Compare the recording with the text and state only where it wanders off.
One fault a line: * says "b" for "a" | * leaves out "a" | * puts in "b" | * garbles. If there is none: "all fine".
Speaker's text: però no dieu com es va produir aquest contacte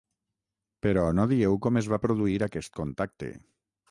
all fine